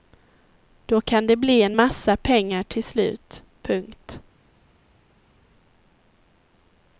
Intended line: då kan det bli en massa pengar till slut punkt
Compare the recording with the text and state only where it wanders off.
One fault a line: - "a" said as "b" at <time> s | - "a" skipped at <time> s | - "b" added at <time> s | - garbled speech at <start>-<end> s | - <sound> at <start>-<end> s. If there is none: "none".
none